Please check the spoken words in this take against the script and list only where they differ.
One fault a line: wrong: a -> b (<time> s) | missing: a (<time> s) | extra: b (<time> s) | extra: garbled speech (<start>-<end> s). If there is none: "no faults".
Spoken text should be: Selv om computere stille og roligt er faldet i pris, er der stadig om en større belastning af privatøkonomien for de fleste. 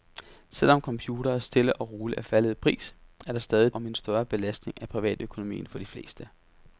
no faults